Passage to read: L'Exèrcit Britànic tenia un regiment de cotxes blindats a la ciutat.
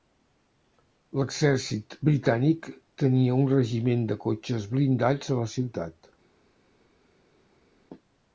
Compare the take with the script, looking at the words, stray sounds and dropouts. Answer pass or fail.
pass